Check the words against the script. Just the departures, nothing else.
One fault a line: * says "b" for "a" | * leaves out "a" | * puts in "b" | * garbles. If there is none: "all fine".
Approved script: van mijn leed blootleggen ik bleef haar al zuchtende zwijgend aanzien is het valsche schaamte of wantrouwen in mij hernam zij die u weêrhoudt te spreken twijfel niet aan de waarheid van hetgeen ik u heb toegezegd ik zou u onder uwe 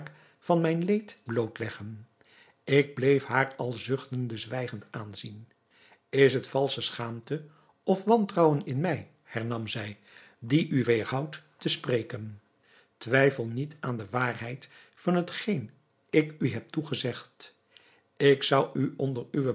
all fine